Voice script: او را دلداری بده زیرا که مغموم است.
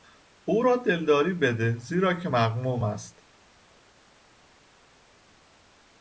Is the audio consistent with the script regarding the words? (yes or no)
yes